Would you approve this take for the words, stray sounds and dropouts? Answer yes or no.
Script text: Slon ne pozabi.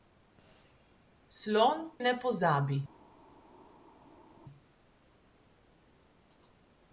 yes